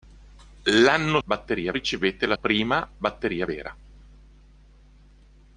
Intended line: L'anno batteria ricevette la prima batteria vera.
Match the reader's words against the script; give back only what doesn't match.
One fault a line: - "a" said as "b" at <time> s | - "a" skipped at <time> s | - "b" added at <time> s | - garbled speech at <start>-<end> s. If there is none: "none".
none